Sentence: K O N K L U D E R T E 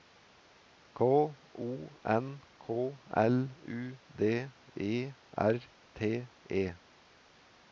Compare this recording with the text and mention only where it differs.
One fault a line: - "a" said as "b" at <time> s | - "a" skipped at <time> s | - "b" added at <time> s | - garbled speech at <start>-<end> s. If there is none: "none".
none